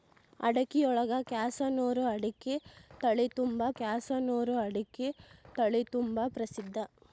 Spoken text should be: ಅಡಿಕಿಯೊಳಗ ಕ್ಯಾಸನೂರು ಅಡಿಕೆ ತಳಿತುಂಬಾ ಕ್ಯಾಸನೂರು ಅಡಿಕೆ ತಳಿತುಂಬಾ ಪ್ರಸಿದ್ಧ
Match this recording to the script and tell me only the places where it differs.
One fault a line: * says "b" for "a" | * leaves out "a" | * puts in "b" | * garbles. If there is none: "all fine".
all fine